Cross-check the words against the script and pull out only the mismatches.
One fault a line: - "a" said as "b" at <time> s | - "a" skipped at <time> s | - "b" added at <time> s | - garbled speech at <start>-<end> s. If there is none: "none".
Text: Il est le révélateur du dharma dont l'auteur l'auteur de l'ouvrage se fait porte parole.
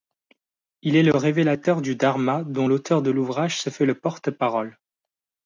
- "l'auteur" skipped at 3.0 s
- "le" added at 3.8 s